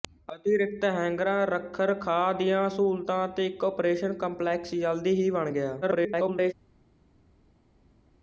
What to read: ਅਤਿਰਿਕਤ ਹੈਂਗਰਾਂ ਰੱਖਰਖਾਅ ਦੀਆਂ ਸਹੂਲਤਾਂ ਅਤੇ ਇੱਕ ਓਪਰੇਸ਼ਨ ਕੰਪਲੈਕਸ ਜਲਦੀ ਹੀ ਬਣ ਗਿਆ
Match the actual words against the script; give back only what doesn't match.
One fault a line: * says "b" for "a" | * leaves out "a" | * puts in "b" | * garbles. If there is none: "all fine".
* garbles